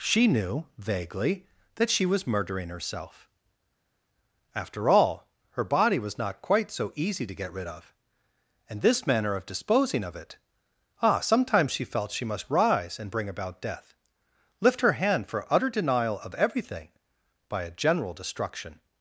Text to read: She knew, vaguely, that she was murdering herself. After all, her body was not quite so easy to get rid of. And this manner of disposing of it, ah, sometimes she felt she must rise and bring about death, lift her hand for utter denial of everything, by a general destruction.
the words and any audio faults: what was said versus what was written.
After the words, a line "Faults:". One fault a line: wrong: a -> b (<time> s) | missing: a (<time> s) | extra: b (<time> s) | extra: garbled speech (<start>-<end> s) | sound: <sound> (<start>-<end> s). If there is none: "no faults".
She knew, vaguely, that she was murdering herself. After all, her body was not quite so easy to get rid of. And this manner of disposing of it, ah, sometimes she felt she must rise and bring about death, lift her hand for utter denial of everything, by a general destruction.
Faults:
no faults